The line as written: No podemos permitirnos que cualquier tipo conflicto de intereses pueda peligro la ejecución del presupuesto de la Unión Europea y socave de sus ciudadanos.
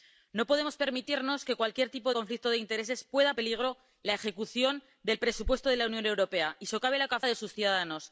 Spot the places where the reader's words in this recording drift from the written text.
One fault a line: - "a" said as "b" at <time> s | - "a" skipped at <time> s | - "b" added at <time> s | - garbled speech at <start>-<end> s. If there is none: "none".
none